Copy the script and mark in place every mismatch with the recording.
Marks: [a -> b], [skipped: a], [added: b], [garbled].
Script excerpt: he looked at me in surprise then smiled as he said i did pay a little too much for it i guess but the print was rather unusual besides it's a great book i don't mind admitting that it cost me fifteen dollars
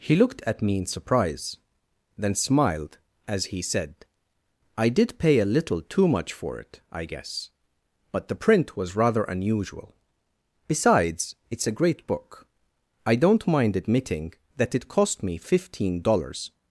he looked at me in surprise then smiled as he said i did pay a little too much for it i guess but the print was rather unusual besides it's a great book i don't mind admitting that it cost me fifteen dollars